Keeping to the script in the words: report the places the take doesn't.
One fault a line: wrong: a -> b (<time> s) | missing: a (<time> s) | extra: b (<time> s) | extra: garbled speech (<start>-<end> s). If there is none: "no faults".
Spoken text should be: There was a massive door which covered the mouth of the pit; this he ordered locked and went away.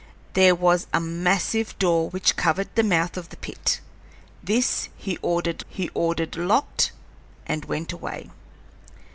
extra: he ordered (5.7 s)